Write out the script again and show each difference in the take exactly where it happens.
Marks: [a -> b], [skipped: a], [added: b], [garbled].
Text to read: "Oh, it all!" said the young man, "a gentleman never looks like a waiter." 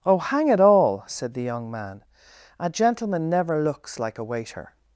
"Oh, [added: hang] it all!" said the young man, "a gentleman never looks like a waiter."